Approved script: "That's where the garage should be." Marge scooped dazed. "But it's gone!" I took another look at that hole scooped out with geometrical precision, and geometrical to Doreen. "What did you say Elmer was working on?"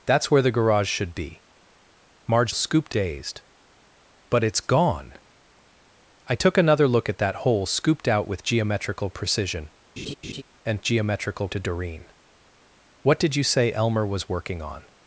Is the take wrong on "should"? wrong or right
right